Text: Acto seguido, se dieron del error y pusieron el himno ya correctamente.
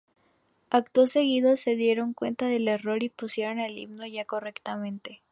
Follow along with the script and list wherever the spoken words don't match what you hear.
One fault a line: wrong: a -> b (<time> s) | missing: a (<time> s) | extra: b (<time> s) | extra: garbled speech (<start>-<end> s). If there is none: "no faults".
extra: cuenta (2.1 s)